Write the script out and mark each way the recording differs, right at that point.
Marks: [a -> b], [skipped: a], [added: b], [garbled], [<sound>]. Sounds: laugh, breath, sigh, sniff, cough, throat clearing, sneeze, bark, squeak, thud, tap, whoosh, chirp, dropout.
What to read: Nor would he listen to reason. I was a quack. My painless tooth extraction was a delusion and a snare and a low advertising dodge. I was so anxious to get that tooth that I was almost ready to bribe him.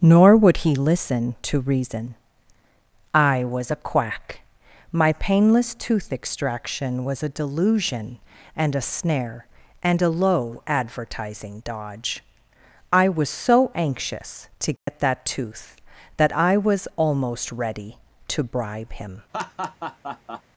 Nor would he listen to reason. I was a quack. My painless tooth extraction was a delusion and a snare and a low advertising dodge. I was so anxious to get [dropout] that tooth that I was almost ready to bribe him. [laugh]